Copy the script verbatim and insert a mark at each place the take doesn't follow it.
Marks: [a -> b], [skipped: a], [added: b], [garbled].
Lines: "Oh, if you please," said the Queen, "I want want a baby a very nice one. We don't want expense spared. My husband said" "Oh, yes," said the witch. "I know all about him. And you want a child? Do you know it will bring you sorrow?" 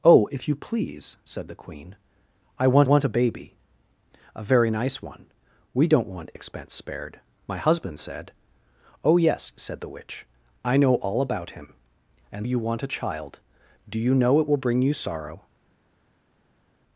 "Oh, if you please," said the Queen, "I want want a baby a very nice one. We don't want expense spared. My husband said" "Oh, yes," said the witch. "I know all about him. And you want a child? Do you know it will bring you sorrow?"